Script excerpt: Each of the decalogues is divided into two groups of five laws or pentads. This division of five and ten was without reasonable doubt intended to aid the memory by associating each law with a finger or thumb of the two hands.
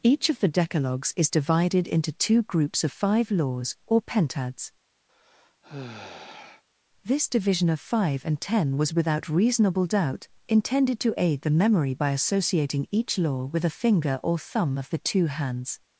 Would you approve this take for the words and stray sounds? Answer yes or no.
no